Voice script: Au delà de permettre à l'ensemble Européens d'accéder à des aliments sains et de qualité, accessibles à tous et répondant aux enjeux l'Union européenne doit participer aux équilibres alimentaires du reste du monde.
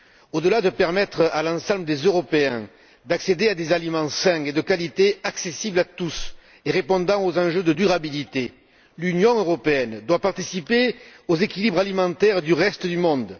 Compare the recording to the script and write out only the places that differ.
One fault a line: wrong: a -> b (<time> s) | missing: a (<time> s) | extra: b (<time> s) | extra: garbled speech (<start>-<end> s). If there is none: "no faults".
extra: des (1.9 s)
extra: de durabilité (7.6 s)